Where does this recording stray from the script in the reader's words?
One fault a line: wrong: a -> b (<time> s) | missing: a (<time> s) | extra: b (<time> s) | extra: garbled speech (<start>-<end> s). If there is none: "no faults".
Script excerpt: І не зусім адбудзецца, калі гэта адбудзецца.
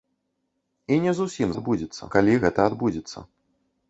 no faults